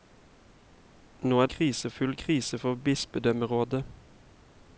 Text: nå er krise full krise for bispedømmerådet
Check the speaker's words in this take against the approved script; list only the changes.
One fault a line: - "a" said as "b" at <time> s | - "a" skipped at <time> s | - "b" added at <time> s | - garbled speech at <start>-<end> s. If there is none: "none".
none